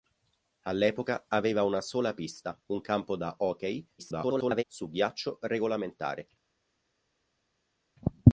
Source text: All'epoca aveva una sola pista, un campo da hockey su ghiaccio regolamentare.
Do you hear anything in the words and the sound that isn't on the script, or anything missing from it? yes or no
yes